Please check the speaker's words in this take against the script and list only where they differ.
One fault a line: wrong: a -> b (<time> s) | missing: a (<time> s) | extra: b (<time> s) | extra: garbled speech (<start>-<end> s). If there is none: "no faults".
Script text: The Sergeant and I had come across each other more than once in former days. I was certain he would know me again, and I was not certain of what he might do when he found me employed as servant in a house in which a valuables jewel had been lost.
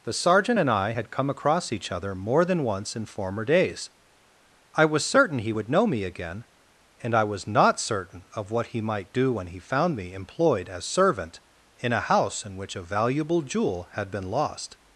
wrong: valuables -> valuable (12.8 s)